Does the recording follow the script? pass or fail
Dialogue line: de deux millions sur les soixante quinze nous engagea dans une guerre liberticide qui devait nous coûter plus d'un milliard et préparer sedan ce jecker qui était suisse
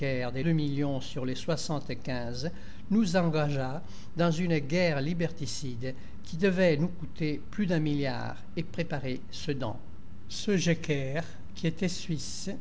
pass